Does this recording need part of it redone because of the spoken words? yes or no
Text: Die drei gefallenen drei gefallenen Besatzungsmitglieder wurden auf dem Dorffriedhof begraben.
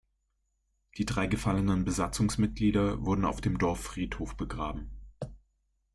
yes